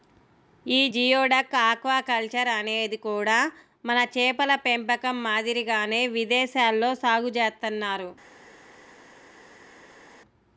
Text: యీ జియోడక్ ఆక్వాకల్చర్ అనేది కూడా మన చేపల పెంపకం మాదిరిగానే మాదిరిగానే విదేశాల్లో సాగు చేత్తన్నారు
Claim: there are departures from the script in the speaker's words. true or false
true